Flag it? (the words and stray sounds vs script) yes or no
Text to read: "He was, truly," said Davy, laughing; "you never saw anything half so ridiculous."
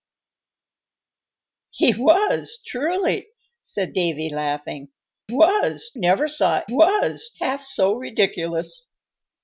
yes